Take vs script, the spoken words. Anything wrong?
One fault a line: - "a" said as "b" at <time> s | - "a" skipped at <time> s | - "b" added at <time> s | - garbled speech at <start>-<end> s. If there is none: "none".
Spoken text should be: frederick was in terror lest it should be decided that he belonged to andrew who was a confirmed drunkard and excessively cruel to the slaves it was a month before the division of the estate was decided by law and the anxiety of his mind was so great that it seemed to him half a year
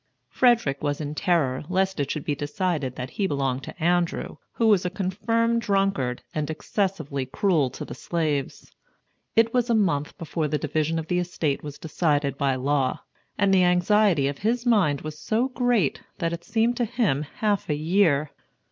none